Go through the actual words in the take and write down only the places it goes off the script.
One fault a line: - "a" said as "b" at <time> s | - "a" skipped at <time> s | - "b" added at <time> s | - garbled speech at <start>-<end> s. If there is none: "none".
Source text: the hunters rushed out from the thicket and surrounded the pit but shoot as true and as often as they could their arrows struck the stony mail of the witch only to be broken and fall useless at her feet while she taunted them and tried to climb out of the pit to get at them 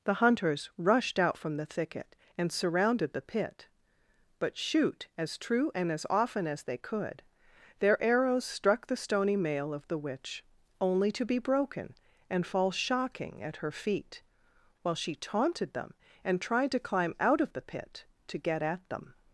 - "useless" said as "shocking" at 12.7 s